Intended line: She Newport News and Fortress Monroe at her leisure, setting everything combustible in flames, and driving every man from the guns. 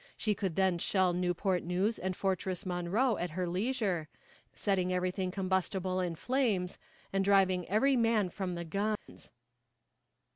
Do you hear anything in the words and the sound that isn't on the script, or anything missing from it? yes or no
yes